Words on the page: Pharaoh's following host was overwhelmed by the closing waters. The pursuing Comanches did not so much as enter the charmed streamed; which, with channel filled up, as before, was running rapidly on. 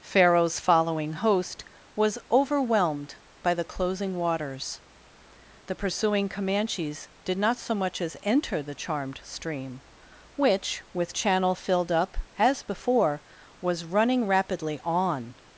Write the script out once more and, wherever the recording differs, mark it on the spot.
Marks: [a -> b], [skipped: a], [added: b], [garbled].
Pharaoh's following host was overwhelmed by the closing waters. The pursuing Comanches did not so much as enter the charmed [streamed; -> stream] which, with channel filled up, as before, was running rapidly on.